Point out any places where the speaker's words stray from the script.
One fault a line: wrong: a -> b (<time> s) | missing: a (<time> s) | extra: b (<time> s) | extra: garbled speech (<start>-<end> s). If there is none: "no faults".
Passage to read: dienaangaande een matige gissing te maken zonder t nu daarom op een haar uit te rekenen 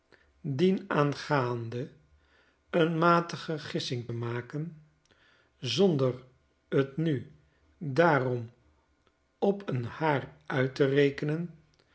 missing: te (4.1 s)